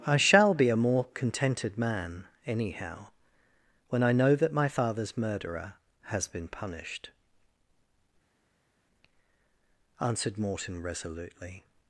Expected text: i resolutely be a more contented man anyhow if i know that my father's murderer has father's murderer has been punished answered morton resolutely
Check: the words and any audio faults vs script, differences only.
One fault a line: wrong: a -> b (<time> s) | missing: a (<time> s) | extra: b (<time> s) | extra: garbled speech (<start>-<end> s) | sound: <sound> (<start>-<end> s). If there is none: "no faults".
wrong: resolutely -> shall (0.2 s)
wrong: if -> when (3.9 s)
missing: father's murderer has (6.3 s)